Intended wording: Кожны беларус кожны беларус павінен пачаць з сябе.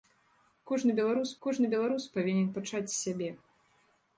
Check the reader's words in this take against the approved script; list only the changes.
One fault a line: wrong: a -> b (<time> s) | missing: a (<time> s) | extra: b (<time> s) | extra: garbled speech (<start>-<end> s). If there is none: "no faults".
no faults